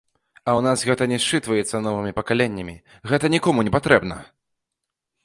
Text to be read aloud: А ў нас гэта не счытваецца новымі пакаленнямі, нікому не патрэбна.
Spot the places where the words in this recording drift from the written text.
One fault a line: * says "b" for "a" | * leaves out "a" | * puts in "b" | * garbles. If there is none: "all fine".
* puts in "гэта"